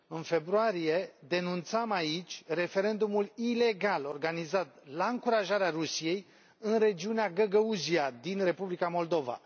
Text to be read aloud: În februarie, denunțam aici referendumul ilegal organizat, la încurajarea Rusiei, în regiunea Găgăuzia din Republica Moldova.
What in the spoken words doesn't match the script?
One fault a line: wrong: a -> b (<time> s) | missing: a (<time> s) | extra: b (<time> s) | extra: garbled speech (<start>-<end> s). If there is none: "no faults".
no faults